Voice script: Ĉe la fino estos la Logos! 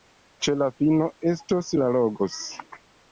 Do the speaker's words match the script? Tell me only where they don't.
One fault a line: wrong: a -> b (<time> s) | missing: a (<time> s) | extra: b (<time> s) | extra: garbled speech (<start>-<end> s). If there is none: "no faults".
no faults